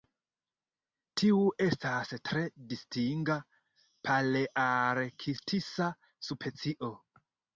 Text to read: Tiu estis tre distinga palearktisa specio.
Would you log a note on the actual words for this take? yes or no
yes